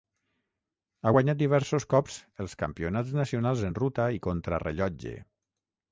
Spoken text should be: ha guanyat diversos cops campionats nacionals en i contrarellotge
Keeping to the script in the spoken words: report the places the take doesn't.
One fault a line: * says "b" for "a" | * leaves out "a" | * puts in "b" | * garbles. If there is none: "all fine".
* puts in "els"
* puts in "ruta"